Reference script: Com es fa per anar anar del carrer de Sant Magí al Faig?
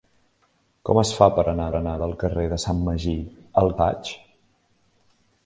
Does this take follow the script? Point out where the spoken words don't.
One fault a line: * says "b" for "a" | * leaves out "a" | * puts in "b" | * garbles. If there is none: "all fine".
all fine